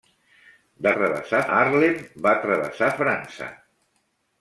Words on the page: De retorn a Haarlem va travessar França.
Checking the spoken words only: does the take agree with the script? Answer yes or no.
no